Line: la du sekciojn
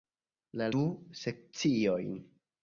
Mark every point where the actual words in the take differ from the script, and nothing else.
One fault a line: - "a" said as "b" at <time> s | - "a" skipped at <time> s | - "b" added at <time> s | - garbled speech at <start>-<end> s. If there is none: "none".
none